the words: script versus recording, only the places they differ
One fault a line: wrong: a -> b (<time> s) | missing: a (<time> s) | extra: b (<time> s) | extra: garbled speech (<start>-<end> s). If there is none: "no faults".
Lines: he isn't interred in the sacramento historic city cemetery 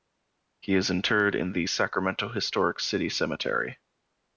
wrong: isn't -> is (0.7 s)